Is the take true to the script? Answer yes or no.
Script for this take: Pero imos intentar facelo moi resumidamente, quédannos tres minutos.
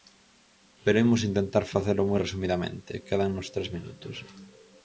yes